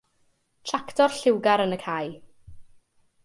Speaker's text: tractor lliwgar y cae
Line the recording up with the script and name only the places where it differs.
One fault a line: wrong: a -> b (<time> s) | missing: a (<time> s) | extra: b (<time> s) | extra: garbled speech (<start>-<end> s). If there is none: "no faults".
extra: yn (1.6 s)